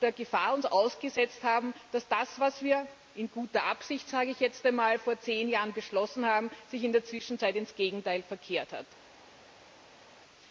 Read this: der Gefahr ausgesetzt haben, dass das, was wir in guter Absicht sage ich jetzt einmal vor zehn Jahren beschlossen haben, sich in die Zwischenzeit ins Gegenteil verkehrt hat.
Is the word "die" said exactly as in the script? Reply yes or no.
no